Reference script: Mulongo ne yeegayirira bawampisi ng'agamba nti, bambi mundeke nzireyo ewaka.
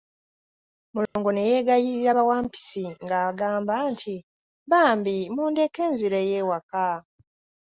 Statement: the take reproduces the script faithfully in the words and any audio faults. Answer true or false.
false